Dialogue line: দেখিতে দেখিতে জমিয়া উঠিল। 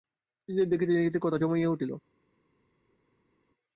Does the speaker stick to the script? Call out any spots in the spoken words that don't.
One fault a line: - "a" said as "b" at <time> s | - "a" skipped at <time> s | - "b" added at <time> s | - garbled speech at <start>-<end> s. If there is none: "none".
- "কথা" added at 1.2 s